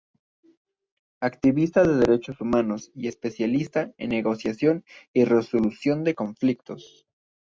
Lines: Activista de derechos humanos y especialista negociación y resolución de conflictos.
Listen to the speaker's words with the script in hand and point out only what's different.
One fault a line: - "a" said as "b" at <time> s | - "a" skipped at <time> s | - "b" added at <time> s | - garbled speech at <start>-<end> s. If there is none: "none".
- "en" added at 4.0 s